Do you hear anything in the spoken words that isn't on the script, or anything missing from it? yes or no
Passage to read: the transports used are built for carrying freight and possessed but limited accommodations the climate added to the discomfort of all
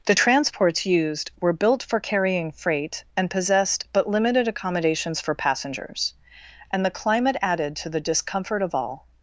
yes